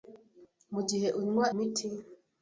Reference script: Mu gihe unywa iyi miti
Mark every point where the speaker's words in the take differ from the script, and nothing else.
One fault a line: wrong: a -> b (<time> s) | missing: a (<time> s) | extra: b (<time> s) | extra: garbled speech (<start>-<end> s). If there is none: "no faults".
missing: iyi (1.4 s)